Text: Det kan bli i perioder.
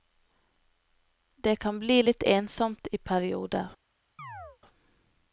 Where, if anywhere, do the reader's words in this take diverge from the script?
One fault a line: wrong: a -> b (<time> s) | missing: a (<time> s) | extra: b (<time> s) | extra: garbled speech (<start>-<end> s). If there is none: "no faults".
extra: litt ensomt (2.0 s)